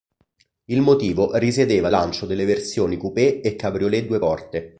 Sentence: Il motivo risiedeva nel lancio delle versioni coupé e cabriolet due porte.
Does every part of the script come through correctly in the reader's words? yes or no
no